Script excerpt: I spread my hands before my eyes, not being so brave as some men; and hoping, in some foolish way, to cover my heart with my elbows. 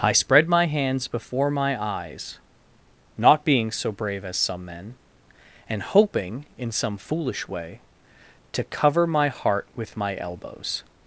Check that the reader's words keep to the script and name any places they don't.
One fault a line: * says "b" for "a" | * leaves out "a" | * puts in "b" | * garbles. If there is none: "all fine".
all fine